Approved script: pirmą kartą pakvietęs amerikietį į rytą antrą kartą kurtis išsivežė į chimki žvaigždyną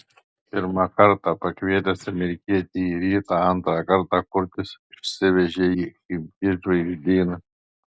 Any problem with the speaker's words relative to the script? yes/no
no